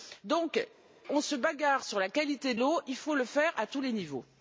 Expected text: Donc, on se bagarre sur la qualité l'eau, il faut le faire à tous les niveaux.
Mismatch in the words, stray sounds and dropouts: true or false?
false